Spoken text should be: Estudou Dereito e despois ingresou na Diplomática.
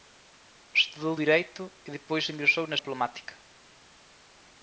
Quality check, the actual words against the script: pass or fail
pass